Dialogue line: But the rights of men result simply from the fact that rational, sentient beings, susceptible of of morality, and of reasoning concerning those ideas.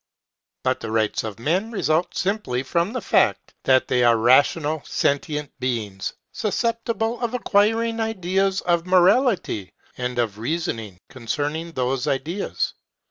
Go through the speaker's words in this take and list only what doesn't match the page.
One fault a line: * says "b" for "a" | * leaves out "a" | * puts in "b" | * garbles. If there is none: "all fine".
* puts in "they are"
* puts in "acquiring ideas"